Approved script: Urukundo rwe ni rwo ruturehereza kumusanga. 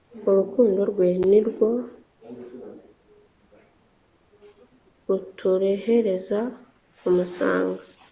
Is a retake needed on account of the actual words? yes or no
no